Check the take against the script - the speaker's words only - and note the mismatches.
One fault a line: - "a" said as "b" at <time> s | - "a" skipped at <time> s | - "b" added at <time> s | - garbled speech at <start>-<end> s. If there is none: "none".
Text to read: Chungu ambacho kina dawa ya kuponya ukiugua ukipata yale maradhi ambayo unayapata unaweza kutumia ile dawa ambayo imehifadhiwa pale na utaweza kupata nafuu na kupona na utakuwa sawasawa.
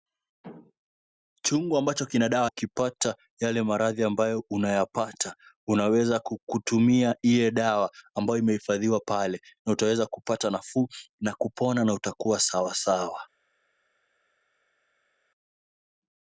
- "ya kuponya ukiugua" skipped at 2.5 s